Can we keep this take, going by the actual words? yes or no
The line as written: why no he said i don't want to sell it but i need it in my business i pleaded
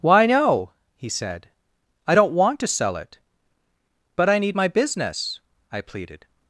no